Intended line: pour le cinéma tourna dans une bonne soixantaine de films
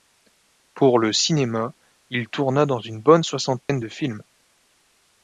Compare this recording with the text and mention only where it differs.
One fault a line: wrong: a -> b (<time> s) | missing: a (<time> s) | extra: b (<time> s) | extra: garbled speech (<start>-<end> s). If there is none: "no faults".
extra: il (2.1 s)